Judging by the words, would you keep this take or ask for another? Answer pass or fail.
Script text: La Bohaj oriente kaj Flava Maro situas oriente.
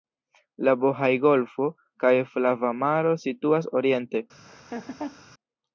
fail